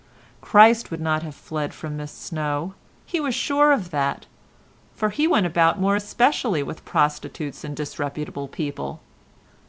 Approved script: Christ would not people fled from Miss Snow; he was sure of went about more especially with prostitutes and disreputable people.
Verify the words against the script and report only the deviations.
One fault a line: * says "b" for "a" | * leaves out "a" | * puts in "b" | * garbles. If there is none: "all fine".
* says "have" for "people"
* puts in "that for He"